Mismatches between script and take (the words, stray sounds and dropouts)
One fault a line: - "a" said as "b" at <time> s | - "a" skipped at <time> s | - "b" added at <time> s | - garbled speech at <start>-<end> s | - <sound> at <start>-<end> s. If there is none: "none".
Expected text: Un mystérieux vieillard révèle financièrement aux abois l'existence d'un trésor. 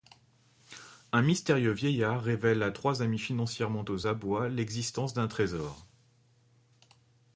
- "à trois amis" added at 2.6 s